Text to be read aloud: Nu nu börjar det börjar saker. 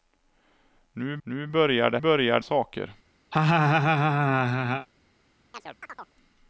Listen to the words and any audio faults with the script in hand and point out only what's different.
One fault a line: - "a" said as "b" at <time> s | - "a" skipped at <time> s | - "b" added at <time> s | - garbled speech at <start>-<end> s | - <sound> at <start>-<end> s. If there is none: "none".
- laugh at 3.3-4.9 s
- chirp at 5.5-6.1 s